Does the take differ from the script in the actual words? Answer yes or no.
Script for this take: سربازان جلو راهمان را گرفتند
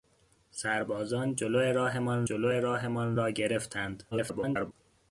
yes